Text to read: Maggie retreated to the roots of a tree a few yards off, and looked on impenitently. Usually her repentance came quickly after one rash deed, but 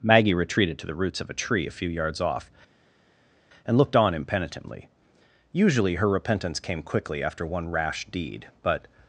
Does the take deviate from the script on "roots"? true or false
false